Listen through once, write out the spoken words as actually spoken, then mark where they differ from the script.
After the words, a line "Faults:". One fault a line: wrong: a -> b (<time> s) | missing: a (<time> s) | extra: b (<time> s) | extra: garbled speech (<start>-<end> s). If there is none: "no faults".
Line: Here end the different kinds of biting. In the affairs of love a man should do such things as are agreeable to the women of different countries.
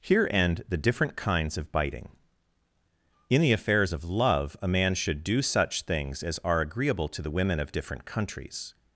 Here end the different kinds of biting. In the affairs of love a man should do such things as are agreeable to the women of different countries.
Faults:
no faults